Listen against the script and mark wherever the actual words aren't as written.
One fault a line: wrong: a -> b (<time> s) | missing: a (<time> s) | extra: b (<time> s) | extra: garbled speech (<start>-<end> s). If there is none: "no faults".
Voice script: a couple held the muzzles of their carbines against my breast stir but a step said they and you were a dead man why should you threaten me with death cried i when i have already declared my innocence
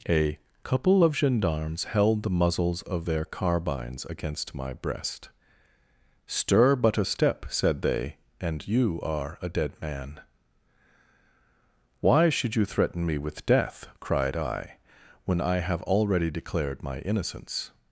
extra: of gendarmes (1.0 s)
wrong: were -> are (9.0 s)